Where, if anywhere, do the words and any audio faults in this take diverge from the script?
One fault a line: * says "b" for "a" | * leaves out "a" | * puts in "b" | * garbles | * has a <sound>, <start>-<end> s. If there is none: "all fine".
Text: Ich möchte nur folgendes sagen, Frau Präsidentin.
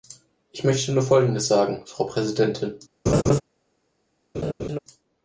* has a laugh, 3.1-3.4 s
* has a laugh, 4.3-4.8 s